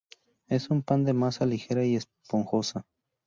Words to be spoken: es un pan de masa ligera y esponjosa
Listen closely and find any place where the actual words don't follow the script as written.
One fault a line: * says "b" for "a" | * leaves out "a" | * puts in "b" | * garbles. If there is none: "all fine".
all fine